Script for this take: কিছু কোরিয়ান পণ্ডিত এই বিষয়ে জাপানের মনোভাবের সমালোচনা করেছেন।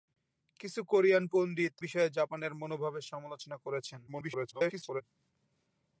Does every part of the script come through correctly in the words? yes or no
no